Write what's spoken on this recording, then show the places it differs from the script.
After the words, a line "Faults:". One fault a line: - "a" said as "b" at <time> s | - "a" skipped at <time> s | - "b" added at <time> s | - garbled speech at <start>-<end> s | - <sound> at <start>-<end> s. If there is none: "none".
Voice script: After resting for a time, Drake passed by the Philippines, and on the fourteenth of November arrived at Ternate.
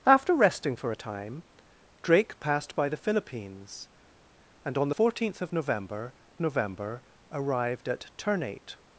After resting for a time, Drake passed by the Philippines, and on fourteenth of November November arrived at Ternate.
Faults:
- "the" skipped at 4.9 s
- "November" added at 6.4 s